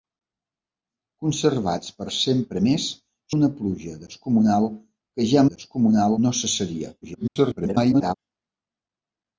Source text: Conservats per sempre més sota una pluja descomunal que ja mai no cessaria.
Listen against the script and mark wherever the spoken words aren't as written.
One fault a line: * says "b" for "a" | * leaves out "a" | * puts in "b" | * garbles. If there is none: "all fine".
* leaves out "sota"
* says "descomunal" for "mai"
* garbles